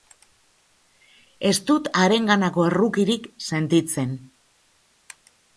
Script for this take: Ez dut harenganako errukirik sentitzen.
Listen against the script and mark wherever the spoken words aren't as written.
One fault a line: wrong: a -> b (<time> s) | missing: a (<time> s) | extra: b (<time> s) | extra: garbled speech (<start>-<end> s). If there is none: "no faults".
no faults